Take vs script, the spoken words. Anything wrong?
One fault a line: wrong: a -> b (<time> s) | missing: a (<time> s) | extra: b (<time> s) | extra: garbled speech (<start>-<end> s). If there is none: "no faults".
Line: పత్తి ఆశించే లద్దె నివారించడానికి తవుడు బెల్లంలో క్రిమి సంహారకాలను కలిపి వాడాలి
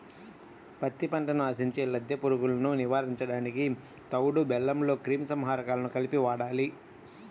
extra: పంటను (1.1 s)
extra: పురుగులను (2.2 s)